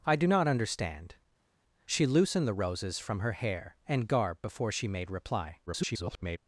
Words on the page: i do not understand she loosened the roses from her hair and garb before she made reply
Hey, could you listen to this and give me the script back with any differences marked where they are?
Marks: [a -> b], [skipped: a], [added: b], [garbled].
i do not understand she loosened the roses from her hair and garb before she made reply [garbled]